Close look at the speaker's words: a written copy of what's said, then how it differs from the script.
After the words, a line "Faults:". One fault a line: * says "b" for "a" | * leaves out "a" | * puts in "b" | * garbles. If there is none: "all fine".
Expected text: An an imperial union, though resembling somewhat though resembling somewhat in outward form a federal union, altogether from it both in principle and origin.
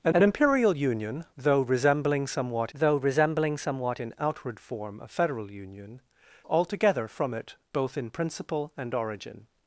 An an imperial union, though resembling somewhat though resembling somewhat in outward form a federal union, altogether from it both in principle and origin.
Faults:
all fine